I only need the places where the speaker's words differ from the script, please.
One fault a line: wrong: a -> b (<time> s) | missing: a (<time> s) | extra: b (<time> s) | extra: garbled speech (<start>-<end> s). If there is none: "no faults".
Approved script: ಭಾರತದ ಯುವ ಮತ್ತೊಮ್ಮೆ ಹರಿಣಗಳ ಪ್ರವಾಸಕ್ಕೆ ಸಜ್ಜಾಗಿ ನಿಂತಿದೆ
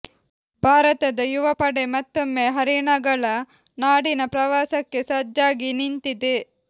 extra: ಪಡೆ (1.5 s)
extra: ನಾಡಿನ (3.8 s)